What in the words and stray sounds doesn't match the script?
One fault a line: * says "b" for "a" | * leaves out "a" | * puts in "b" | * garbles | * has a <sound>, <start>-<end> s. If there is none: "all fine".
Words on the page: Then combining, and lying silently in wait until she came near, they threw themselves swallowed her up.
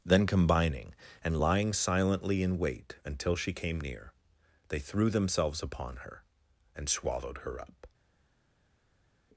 * puts in "upon her and"